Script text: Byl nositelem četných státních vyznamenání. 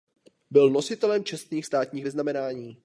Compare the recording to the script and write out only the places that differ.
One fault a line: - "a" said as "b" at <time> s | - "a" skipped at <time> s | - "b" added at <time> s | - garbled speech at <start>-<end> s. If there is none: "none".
none